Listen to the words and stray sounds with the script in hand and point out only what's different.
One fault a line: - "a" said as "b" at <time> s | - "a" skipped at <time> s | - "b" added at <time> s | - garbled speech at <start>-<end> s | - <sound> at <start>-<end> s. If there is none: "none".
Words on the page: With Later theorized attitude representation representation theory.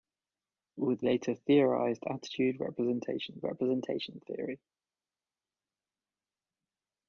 none